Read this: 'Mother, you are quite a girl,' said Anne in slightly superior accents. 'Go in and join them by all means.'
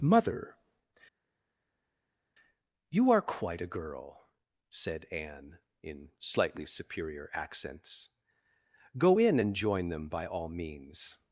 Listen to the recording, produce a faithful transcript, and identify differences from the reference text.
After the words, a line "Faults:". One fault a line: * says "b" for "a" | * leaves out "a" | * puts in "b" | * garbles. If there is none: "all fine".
'Mother, you are quite a girl,' said Anne in slightly superior accents. 'Go in and join them by all means.'
Faults:
all fine